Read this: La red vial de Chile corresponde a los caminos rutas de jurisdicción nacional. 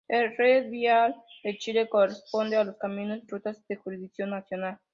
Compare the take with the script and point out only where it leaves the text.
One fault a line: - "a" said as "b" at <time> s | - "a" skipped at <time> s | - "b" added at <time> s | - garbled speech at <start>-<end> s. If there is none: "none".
none